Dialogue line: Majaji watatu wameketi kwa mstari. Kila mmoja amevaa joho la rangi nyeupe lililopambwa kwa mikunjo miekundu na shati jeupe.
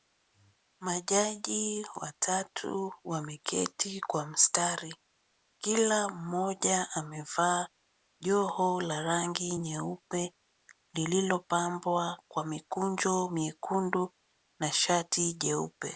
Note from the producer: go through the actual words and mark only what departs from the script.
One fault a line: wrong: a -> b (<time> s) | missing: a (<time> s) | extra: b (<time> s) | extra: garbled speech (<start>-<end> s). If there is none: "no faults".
no faults